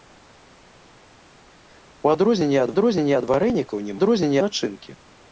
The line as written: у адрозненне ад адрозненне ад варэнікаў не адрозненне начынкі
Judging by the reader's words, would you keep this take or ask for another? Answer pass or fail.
pass